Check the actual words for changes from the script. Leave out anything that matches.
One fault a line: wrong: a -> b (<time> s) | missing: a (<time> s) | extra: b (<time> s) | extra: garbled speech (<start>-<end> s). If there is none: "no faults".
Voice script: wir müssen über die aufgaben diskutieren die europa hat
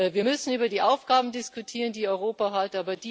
no faults